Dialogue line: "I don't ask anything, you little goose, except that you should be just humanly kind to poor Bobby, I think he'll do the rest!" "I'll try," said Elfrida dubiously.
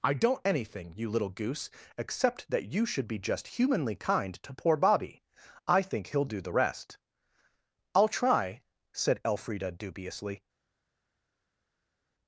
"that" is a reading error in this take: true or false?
false